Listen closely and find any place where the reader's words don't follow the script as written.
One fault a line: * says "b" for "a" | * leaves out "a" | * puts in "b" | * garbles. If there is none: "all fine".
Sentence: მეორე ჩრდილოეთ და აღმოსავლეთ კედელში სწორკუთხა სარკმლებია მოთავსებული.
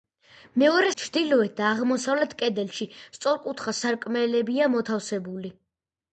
all fine